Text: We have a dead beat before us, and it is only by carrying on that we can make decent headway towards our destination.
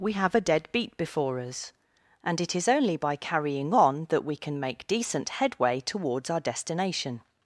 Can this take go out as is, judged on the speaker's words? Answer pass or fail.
pass